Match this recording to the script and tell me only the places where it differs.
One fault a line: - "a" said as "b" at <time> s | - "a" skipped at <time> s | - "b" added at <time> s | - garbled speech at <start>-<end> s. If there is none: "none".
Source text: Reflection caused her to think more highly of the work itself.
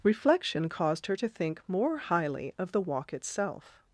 - "work" said as "walk" at 2.8 s